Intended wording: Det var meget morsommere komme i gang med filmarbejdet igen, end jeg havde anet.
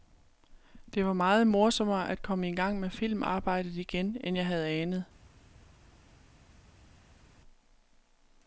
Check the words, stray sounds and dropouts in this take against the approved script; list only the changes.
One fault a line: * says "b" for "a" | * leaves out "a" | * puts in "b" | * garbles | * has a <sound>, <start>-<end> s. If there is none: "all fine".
* puts in "at"